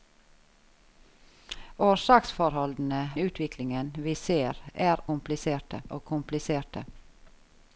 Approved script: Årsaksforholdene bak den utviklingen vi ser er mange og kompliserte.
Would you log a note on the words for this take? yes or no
yes